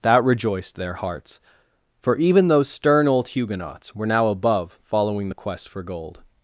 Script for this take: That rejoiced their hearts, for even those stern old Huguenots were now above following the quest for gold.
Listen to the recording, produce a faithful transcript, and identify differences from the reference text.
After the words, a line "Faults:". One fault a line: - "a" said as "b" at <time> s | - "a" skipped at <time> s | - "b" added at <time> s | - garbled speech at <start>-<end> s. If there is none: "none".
That rejoiced their hearts, for even those stern old Huguenots were now above following the quest for gold.
Faults:
none